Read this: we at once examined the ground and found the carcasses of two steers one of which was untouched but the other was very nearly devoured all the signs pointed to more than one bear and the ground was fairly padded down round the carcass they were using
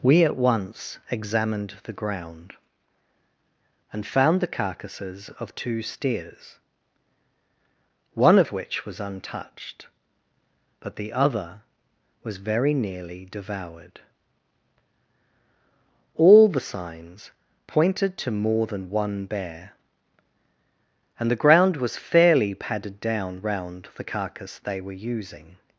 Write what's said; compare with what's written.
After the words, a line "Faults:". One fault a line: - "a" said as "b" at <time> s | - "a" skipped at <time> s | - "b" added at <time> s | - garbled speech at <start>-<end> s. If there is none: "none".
we at once examined the ground and found the carcasses of two steers one of which was untouched but the other was very nearly devoured all the signs pointed to more than one bear and the ground was fairly padded down round the carcass they were using
Faults:
none